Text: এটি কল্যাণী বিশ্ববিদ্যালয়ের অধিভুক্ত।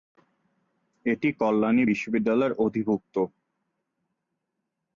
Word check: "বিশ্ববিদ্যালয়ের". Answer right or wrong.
right